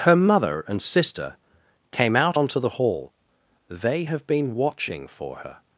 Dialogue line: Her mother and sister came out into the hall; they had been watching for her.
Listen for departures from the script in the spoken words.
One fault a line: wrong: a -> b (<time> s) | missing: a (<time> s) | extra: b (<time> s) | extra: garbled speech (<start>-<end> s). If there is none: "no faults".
wrong: into -> onto (2.3 s)
wrong: had -> have (4.0 s)